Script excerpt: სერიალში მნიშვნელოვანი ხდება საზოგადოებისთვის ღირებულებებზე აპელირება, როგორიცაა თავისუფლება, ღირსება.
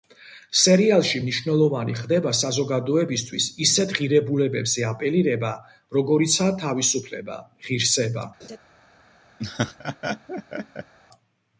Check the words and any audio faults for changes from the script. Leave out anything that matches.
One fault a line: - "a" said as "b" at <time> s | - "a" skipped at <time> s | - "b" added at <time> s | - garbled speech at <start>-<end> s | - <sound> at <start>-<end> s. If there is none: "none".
- "ისეთ" added at 3.7 s
- laugh at 8.4-8.6 s
- laugh at 9.4-10.9 s